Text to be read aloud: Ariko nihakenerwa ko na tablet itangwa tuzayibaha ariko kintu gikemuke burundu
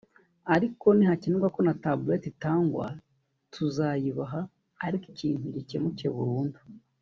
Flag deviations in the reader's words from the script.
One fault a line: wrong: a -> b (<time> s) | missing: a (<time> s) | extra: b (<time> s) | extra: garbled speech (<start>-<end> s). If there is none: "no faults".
no faults